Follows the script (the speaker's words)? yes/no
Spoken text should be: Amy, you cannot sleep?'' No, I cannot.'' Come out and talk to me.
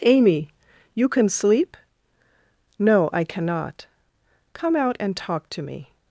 no